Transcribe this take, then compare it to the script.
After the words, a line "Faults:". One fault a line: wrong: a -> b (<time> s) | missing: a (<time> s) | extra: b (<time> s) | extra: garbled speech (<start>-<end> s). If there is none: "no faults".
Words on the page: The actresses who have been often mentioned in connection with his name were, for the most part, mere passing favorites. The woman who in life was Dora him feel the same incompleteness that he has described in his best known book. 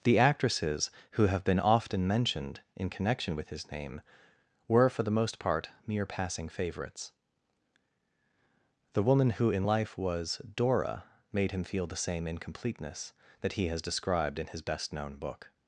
The actresses who have been often mentioned in connection with his name were, for the most part, mere passing favorites. The woman who in life was Dora made him feel the same incompleteness that he has described in his best known book.
Faults:
extra: made (11.3 s)